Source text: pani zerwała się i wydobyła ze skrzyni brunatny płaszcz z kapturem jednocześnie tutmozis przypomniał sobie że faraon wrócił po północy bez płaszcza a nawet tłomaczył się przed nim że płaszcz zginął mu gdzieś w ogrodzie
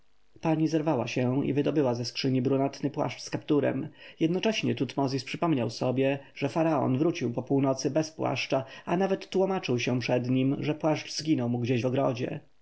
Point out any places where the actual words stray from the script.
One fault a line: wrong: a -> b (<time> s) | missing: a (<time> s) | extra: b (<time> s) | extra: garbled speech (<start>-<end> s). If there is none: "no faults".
no faults